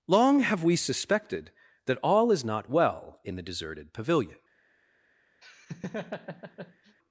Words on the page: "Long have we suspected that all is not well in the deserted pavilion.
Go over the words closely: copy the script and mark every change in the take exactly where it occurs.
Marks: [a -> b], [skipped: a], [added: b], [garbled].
"Long have we suspected that all is not well in the deserted pavilion.